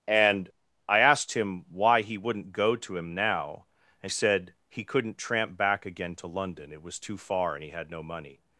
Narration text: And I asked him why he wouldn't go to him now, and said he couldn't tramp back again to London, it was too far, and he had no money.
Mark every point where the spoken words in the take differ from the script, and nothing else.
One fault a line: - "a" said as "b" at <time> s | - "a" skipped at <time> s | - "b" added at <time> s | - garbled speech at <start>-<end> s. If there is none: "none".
none